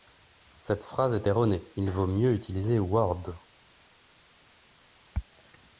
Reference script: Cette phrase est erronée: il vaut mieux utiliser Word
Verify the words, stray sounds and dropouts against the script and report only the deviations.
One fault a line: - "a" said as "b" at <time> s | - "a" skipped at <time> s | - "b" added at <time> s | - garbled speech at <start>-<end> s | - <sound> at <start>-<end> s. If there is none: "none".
none